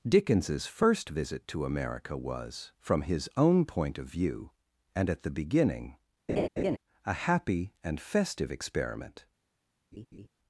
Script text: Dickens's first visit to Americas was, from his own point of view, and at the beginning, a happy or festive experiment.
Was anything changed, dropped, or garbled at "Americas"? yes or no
yes